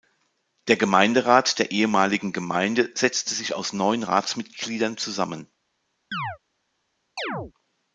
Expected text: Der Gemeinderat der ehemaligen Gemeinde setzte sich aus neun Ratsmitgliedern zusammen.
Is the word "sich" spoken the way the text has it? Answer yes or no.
yes